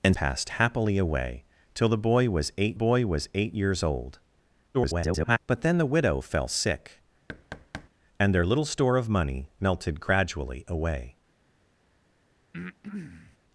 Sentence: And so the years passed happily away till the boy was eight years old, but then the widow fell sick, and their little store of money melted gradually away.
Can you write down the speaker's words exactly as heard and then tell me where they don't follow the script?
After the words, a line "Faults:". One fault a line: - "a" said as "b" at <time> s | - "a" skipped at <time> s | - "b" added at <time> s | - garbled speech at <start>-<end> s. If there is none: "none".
And passed happily away till the boy was eight boy was eight years old, [garbled] but then the widow fell sick, and their little store of money melted gradually away.
Faults:
- "so the years" skipped at 0.2 s
- "boy was eight" added at 2.7 s
- garbled speech at 4.7-5.4 s